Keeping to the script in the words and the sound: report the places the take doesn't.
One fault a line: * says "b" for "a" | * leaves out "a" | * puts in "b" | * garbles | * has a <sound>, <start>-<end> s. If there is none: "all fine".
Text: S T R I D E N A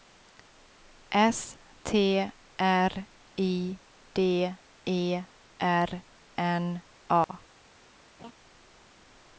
* puts in "R"
* has a dropout, 7.2-7.3 s
* has a laugh, 8.2-8.3 s